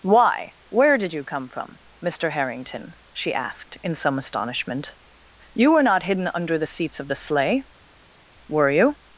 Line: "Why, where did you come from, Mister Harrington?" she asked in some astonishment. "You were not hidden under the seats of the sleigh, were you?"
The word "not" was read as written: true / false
true